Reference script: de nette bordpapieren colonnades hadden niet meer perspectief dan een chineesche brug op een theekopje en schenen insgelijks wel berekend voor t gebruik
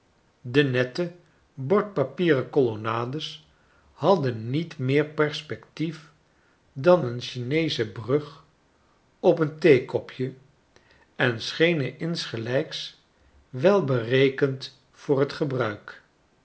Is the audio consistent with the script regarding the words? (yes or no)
yes